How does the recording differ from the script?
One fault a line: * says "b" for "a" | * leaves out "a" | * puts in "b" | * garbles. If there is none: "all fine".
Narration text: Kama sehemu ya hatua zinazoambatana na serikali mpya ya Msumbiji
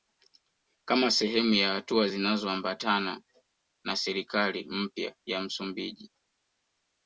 all fine